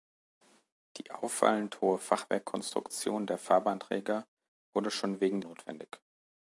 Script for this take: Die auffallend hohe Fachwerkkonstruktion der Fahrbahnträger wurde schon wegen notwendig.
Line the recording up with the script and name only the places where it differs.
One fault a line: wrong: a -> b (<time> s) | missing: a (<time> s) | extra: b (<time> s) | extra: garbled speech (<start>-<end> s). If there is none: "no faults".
no faults